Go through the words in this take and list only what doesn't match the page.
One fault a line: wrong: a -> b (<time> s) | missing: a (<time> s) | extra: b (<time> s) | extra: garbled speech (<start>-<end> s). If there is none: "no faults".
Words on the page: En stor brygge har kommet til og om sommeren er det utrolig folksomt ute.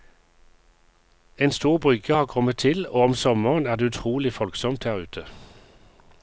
extra: her (4.8 s)